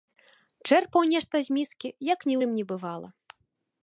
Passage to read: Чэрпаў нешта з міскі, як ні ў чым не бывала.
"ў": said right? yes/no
no